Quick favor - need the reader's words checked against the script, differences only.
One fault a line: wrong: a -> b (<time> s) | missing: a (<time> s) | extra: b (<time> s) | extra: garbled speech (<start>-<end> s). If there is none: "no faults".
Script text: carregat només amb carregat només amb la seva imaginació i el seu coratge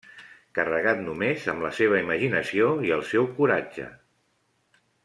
missing: carregat només amb (1.6 s)